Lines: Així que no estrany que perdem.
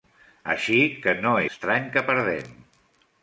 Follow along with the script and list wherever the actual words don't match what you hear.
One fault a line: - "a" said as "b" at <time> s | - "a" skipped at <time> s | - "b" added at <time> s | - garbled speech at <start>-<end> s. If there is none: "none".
none